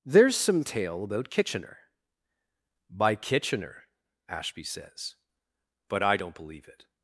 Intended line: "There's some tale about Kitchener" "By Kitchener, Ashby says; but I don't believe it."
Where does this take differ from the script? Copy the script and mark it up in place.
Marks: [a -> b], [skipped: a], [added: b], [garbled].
"There's some tale about Kitchener" "By Kitchener, Ashby says; but I don't believe it."